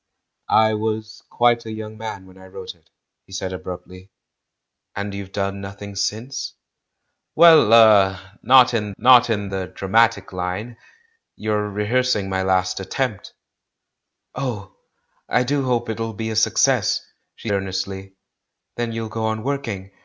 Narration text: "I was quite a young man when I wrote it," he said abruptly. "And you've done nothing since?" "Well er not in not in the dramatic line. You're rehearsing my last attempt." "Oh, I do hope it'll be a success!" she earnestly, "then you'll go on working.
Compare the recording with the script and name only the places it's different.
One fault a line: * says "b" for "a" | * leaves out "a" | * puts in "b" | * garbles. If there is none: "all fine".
all fine